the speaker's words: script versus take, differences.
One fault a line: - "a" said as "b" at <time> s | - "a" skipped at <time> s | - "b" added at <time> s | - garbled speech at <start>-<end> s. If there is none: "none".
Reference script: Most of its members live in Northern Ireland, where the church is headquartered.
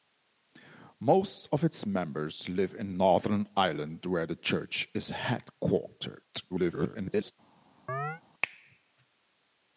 - garbled speech at 6.5-7.3 s